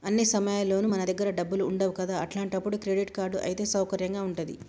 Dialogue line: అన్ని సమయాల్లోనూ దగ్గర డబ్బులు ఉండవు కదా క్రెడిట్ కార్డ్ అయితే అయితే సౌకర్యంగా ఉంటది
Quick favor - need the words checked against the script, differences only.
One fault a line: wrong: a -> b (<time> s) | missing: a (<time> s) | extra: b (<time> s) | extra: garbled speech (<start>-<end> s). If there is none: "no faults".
extra: మన (0.8 s)
extra: అట్లాంటప్పుడు (2.2 s)
missing: అయితే (3.6 s)